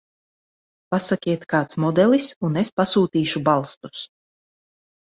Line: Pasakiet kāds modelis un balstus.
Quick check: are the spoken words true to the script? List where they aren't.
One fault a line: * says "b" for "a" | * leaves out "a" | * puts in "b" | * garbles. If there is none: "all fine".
* puts in "es pasūtīšu"